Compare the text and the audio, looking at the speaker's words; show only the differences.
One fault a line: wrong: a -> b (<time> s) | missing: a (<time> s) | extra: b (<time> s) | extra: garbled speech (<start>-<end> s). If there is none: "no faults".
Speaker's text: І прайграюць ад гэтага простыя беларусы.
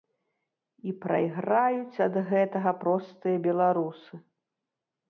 no faults